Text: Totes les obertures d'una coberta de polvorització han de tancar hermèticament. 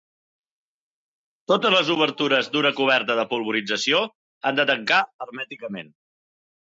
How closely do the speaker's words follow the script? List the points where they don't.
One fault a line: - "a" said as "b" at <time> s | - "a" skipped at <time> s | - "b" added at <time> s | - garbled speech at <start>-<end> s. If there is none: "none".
none